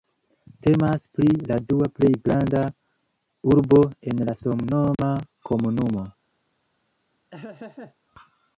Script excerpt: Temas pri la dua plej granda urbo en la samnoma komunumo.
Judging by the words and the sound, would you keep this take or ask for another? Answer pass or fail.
fail